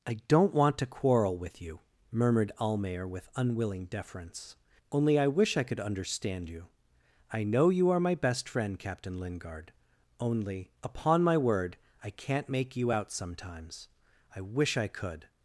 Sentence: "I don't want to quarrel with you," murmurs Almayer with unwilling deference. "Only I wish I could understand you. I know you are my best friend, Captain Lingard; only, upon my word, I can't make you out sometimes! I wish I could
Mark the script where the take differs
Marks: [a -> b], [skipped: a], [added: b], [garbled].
"I don't want to quarrel with you," [murmurs -> murmured] Almayer with unwilling deference. "Only I wish I could understand you. I know you are my best friend, Captain Lingard; only, upon my word, I can't make you out sometimes! I wish I could